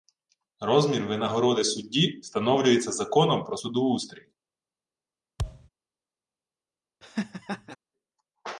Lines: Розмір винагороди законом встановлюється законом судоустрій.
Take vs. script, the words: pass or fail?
fail